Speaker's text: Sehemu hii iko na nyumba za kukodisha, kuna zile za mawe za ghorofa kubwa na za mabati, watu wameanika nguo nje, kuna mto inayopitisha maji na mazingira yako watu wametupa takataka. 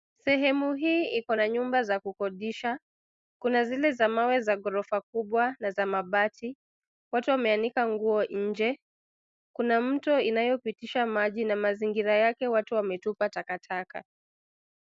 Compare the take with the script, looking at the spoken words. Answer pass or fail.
fail